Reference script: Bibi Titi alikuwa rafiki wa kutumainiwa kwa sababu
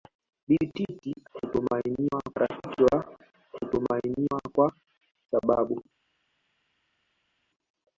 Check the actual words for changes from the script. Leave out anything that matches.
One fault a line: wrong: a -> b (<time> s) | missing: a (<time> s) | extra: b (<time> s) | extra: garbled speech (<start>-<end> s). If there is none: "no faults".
wrong: alikuwa -> kutumainiwa (1.3 s)